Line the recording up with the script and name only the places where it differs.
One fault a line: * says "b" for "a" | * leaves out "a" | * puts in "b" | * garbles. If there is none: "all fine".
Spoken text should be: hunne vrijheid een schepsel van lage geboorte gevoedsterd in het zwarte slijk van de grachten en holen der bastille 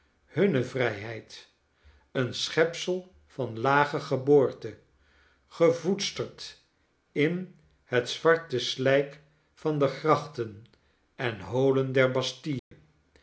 all fine